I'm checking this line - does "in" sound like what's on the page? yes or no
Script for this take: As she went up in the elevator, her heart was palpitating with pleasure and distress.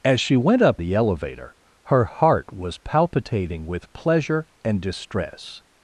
no